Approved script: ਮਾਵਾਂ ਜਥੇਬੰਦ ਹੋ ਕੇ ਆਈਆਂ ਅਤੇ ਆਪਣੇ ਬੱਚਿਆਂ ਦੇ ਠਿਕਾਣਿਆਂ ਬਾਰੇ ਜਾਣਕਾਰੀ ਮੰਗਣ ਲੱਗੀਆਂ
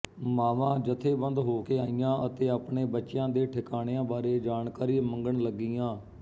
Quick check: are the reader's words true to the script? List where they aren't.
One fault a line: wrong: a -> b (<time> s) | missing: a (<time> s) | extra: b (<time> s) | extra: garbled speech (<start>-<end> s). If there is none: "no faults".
no faults